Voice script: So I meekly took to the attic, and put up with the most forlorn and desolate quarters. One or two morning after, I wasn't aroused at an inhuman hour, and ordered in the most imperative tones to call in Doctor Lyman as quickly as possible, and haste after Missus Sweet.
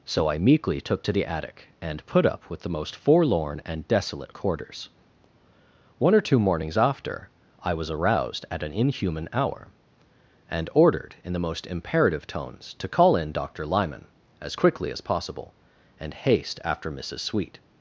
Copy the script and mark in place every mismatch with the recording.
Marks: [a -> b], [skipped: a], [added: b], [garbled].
So I meekly took to the attic, and put up with the most forlorn and desolate quarters. One or two [morning -> mornings] after, I [wasn't -> was] aroused at an inhuman hour, and ordered in the most imperative tones to call in Doctor Lyman as quickly as possible, and haste after Missus Sweet.